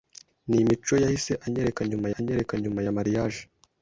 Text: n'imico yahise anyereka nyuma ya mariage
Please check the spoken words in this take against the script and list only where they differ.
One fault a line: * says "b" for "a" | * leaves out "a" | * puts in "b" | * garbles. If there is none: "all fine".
* puts in "anyereka nyuma"